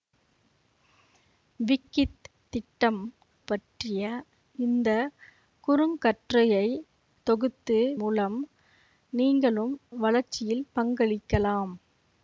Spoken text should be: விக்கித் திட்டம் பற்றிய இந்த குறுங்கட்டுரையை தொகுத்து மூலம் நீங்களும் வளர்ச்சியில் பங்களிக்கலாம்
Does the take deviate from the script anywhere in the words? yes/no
no